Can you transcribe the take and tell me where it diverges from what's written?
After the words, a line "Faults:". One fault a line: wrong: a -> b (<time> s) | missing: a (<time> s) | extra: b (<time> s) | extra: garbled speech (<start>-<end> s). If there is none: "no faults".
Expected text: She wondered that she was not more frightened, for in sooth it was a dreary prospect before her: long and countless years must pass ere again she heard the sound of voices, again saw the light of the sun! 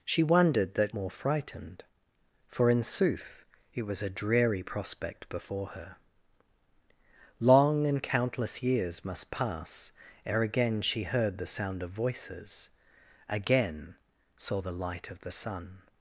She wondered that more frightened, for in sooth it was a dreary prospect before her: long and countless years must pass ere again she heard the sound of voices, again saw the light of the sun!
Faults:
missing: she was not (0.9 s)